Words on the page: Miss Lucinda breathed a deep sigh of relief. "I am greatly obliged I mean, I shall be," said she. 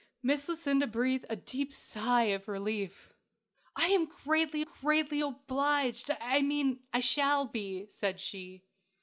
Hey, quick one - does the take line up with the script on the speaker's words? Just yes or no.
no